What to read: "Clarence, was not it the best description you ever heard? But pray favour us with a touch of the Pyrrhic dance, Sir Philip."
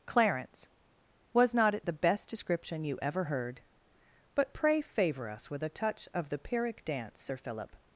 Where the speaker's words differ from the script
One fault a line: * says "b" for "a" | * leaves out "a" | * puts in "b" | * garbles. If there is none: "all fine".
all fine